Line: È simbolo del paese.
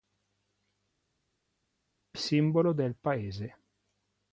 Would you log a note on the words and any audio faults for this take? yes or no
no